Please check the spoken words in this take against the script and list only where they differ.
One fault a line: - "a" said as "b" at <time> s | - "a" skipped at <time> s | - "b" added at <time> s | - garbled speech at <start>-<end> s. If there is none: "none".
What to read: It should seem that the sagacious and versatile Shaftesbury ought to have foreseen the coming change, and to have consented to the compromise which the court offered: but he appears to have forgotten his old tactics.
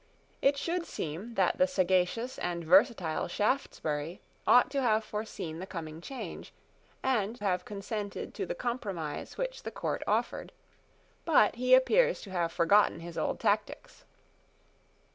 - "to" skipped at 7.3 s